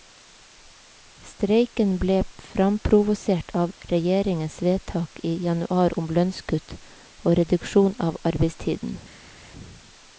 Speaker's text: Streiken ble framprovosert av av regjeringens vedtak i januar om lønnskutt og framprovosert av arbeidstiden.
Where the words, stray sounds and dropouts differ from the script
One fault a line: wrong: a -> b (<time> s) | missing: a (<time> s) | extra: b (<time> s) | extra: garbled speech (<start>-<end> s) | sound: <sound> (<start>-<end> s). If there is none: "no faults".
missing: av (3.8 s)
wrong: framprovosert -> reduksjon (7.4 s)